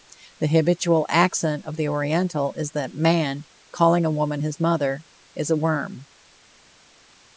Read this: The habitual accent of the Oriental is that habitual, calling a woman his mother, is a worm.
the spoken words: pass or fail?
fail